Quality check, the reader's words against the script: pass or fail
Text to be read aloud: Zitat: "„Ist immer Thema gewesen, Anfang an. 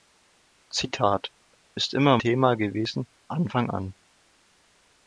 pass